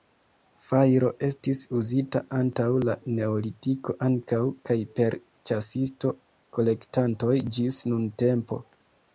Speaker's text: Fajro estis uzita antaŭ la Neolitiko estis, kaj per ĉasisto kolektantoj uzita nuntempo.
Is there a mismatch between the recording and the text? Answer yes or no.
yes